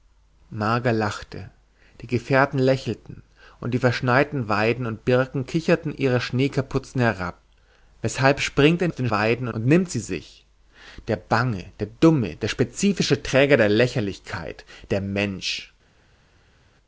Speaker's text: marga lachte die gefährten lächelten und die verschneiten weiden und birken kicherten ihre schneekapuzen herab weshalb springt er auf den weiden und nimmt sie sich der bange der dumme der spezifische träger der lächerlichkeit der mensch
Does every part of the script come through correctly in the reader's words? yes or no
yes